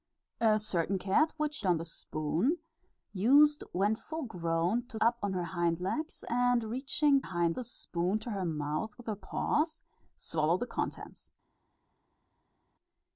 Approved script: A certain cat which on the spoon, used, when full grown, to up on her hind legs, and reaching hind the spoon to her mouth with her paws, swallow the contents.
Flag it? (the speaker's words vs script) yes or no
no